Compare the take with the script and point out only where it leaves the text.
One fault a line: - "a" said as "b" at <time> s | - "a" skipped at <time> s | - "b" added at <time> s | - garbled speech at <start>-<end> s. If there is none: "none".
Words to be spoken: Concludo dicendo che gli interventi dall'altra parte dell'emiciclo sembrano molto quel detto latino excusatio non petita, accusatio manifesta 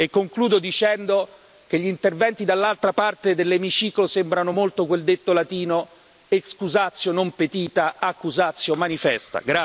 none